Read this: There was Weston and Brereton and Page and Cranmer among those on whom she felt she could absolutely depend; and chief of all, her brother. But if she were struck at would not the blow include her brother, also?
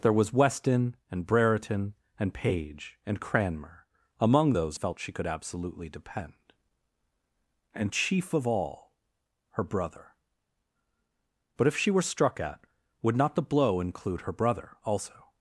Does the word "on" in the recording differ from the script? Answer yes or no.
yes